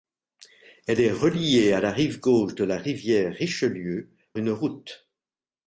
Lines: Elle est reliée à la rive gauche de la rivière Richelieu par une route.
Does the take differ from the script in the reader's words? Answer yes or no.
yes